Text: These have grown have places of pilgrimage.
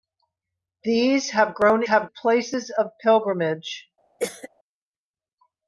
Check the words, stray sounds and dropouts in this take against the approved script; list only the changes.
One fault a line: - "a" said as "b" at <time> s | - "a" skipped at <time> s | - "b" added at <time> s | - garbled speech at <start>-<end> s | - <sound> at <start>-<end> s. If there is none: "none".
- cough at 4.2-4.5 s